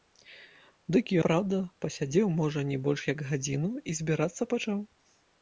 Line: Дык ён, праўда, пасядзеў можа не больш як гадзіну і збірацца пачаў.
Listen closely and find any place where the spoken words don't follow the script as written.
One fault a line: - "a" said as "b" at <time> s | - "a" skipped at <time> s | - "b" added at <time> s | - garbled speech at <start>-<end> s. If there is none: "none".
- "ён" skipped at 1.1 s